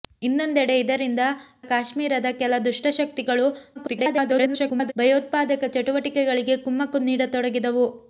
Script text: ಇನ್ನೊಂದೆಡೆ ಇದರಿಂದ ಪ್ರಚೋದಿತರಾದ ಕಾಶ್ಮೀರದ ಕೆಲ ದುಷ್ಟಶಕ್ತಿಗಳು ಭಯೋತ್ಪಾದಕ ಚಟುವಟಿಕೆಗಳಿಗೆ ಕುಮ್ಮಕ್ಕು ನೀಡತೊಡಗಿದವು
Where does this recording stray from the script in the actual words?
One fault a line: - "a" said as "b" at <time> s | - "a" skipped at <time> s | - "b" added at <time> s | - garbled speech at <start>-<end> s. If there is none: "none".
- "ಪ್ರಚೋದಿತರಾದ" skipped at 1.2 s
- garbled speech at 3.8-4.9 s